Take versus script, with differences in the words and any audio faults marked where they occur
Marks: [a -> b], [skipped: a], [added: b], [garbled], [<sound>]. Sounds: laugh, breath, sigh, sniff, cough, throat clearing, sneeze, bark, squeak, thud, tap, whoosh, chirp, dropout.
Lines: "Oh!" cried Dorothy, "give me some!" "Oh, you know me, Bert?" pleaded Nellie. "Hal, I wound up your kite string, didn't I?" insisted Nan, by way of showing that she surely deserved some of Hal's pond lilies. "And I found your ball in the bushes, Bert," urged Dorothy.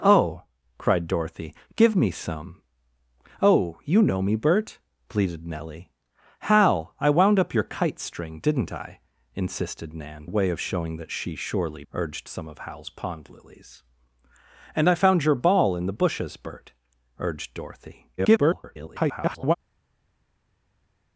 "Oh!" cried Dorothy, "give me some!" "Oh, you know me, Bert?" pleaded Nellie. "Hal, I wound up your kite string, didn't I?" insisted Nan, [skipped: by] way of showing that she surely [deserved -> urged] some of Hal's pond lilies. "And I found your ball in the bushes, Bert," urged Dorothy. [garbled]